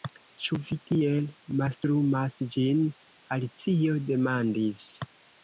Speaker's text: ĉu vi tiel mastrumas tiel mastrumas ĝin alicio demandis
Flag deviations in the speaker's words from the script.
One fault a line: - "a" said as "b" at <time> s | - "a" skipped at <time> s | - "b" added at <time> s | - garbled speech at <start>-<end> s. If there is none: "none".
- "tiel mastrumas" skipped at 2.4 s